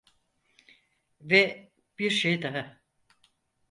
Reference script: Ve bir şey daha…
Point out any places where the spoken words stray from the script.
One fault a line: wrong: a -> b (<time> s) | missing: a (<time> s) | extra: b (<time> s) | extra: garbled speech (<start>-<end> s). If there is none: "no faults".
no faults